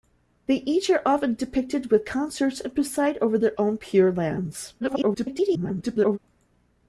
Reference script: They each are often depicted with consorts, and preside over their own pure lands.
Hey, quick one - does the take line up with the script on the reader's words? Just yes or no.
no